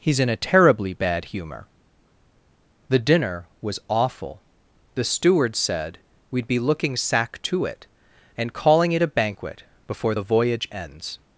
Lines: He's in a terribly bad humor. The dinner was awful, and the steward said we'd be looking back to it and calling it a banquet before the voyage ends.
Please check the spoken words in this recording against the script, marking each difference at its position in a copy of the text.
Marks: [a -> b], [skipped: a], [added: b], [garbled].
He's in a terribly bad humor. The dinner was awful, [skipped: and] the steward said we'd be looking [back -> sack] to it and calling it a banquet before the voyage ends.